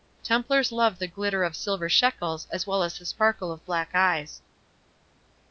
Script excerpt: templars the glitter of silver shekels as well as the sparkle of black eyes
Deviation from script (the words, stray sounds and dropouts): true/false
true